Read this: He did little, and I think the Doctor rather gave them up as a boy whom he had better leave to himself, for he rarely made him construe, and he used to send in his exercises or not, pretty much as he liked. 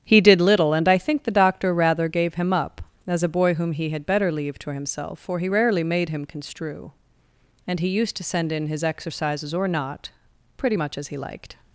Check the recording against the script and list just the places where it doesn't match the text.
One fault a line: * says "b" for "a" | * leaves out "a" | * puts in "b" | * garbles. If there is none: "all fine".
* says "him" for "them"